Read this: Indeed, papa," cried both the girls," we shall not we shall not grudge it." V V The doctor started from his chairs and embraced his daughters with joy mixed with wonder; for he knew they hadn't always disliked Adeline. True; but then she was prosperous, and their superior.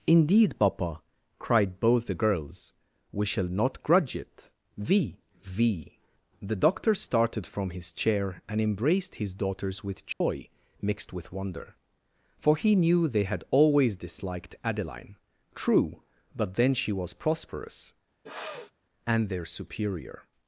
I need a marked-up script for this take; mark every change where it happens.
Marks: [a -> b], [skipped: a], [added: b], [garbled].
Indeed, papa," cried both the girls," we shall not [skipped: we shall not] grudge it." V V The doctor started from his [chairs -> chair] and embraced his daughters with joy mixed with wonder; for he knew they [hadn't -> had] always disliked Adeline. True; but then she was prosperous, and their superior.